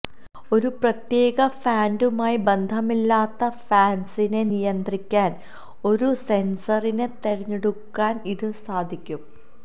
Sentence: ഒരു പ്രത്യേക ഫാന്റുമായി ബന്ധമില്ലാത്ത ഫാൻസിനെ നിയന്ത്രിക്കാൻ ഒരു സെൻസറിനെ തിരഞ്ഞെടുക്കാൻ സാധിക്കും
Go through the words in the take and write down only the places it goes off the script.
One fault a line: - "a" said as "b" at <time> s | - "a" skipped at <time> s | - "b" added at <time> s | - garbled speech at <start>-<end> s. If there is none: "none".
- "ഇത്" added at 8.3 s